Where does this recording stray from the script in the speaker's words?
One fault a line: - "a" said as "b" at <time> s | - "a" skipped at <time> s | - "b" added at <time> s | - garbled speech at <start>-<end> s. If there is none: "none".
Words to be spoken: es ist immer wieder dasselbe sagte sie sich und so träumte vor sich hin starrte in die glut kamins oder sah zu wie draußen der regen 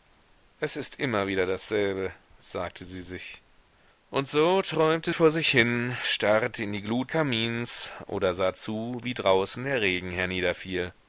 none